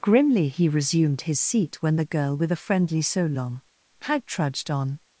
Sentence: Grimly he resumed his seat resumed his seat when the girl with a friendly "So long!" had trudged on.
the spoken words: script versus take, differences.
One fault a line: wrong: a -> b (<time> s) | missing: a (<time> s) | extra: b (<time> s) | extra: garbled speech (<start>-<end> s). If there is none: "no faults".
missing: resumed his seat (1.8 s)